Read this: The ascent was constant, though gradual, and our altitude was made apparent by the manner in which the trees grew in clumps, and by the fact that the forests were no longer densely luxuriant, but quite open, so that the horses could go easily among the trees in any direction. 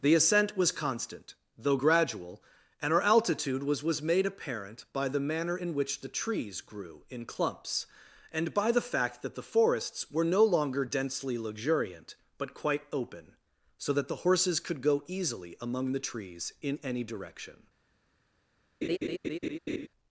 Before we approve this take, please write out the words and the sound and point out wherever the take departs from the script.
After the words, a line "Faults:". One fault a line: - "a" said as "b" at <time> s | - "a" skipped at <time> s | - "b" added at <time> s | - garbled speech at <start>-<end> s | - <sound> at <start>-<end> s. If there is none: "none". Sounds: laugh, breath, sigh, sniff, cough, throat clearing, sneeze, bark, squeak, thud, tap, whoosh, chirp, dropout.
The ascent was constant, though gradual, and our altitude was was made apparent by the manner in which the trees grew in clumps, and by the fact that the forests were no longer densely luxuriant, but quite open, so that the horses could go easily among the trees in any direction.
Faults:
- "was" added at 3.8 s
- laugh at 18.8-19.9 s